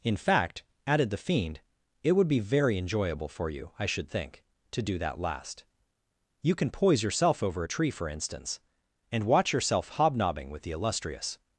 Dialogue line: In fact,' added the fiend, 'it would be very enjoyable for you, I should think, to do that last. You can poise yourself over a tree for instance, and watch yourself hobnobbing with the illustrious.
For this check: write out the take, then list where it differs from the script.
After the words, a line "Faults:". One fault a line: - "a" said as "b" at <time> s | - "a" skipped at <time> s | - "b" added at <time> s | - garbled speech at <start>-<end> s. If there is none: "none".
In fact,' added the fiend, 'it would be very enjoyable for you, I should think, to do that last. You can poise yourself over a tree for instance, and watch yourself hobnobbing with the illustrious.
Faults:
none